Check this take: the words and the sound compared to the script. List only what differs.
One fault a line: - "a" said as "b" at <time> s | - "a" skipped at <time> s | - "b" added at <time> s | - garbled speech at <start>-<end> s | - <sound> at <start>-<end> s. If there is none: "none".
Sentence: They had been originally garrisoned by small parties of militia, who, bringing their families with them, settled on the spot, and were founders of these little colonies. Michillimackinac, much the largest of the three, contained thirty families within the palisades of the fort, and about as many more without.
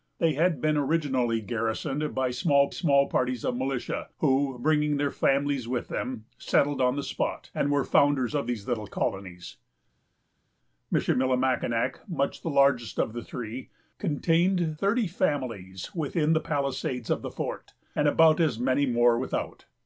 - "small" added at 2.7 s